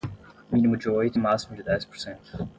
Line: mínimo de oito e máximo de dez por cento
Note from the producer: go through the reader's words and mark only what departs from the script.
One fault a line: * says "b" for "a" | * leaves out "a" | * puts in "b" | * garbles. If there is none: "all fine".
all fine